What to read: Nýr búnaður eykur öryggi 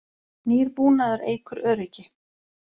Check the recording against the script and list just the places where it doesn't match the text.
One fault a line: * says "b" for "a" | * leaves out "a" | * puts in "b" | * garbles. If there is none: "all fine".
all fine